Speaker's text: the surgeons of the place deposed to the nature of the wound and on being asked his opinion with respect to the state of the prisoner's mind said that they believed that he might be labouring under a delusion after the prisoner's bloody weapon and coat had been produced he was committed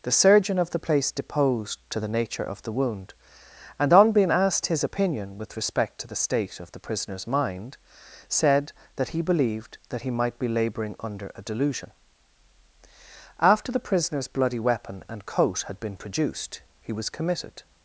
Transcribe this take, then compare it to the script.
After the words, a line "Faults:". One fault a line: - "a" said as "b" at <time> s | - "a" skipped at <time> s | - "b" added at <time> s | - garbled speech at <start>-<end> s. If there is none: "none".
the surgeon of the place deposed to the nature of the wound and on being asked his opinion with respect to the state of the prisoner's mind said that he believed that he might be labouring under a delusion after the prisoner's bloody weapon and coat had been produced he was committed
Faults:
- "surgeons" said as "surgeon" at 0.1 s
- "they" said as "he" at 9.1 s